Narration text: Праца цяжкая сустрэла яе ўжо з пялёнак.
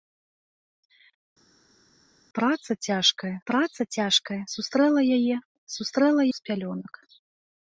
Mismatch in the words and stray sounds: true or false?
true